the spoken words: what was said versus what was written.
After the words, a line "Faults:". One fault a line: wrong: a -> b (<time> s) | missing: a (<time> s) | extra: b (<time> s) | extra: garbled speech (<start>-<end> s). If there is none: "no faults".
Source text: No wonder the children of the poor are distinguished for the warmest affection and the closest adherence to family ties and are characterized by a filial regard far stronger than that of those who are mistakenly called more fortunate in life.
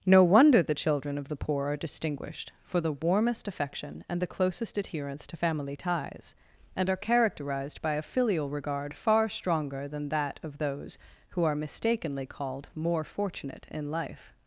No wonder the children of the poor are distinguished for the warmest affection and the closest adherence to family ties and are characterized by a filial regard far stronger than that of those who are mistakenly called more fortunate in life.
Faults:
no faults